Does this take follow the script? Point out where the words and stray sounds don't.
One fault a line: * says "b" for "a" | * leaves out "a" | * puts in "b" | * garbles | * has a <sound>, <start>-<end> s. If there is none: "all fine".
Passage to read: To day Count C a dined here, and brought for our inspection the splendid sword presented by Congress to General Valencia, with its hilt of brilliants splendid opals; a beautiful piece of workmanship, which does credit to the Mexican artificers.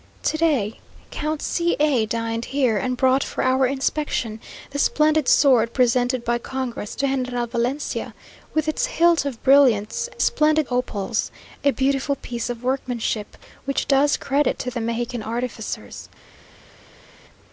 all fine